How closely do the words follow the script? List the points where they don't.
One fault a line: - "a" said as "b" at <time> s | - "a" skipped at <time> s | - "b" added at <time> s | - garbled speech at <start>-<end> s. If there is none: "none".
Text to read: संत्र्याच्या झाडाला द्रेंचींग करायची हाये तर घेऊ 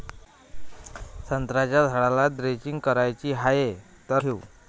none